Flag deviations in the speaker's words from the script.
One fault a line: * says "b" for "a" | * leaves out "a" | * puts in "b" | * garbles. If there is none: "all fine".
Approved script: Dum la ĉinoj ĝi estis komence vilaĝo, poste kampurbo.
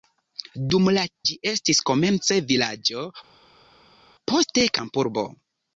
* leaves out "ĉinoj"